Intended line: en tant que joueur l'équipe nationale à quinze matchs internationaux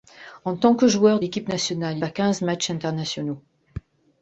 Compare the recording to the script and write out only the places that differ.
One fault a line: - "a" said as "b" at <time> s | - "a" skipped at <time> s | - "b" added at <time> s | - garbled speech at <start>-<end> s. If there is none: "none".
none